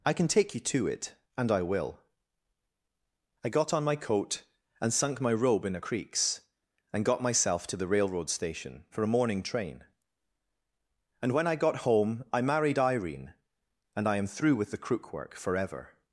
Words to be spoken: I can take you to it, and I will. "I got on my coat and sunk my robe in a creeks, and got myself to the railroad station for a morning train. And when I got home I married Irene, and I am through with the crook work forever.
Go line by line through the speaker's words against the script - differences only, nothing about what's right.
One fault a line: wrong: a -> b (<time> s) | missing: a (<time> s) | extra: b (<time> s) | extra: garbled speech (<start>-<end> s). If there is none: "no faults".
no faults